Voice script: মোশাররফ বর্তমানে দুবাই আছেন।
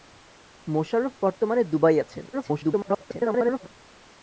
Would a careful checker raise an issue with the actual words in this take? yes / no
yes